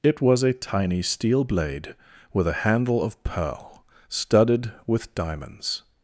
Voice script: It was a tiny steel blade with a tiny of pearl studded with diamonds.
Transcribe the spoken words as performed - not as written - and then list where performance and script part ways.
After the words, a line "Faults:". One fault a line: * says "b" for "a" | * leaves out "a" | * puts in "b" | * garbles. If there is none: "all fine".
It was a tiny steel blade with a handle of pearl studded with diamonds.
Faults:
* says "handle" for "tiny"